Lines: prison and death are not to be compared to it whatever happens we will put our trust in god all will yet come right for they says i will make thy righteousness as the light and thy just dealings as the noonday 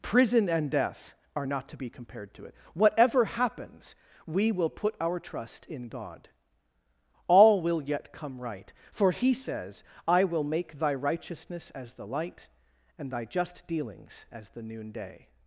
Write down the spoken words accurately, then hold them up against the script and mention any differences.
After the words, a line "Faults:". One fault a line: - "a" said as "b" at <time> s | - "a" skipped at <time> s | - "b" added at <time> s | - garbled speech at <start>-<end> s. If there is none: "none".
prison and death are not to be compared to it whatever happens we will put our trust in god all will yet come right for he says i will make thy righteousness as the light and thy just dealings as the noonday
Faults:
- "they" said as "he" at 9.1 s